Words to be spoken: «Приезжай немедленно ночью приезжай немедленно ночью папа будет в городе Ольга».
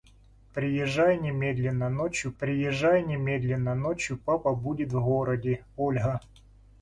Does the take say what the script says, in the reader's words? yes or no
yes